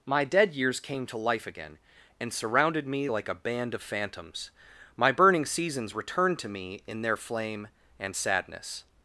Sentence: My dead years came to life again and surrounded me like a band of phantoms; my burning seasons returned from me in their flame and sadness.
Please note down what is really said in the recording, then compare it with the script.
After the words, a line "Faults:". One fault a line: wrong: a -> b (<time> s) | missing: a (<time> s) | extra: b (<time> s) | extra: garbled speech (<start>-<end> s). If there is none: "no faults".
My dead years came to life again and surrounded me like a band of phantoms; my burning seasons returned to me in their flame and sadness.
Faults:
wrong: from -> to (6.4 s)